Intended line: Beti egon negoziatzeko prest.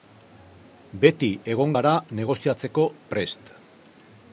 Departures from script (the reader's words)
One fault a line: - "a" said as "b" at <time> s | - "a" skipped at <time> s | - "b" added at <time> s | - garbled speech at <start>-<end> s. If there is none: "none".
- "gara" added at 1.8 s